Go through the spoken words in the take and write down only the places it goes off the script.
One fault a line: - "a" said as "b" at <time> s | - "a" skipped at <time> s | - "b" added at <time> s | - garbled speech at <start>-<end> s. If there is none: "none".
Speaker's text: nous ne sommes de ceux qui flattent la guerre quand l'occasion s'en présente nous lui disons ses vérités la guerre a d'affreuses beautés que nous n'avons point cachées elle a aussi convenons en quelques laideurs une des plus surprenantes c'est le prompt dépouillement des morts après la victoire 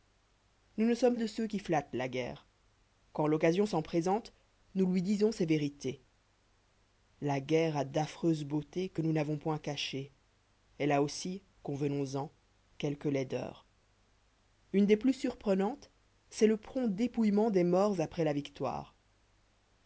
none